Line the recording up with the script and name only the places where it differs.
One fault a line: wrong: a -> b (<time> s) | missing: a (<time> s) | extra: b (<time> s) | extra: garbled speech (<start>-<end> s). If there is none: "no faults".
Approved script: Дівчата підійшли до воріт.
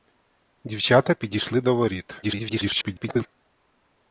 extra: garbled speech (2.2-3.3 s)